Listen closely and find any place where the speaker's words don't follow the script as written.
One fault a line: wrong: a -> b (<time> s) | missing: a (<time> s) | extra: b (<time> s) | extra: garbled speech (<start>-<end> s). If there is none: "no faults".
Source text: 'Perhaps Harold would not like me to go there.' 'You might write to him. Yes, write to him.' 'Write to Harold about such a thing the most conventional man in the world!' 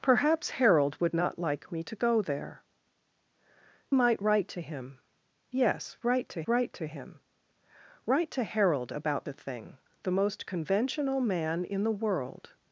missing: You (2.6 s)
extra: write to (6.4 s)
missing: such (9.3 s)